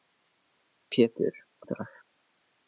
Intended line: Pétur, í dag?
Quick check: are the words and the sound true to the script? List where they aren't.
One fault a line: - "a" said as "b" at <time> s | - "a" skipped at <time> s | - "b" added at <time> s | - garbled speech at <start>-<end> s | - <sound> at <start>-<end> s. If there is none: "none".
none